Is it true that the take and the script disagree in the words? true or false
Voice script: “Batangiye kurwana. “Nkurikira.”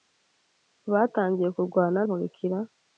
false